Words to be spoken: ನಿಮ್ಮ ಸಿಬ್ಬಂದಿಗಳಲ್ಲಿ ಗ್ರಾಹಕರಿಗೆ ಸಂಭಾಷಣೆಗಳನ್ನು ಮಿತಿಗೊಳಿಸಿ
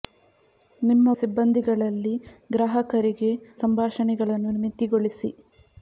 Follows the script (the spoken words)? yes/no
yes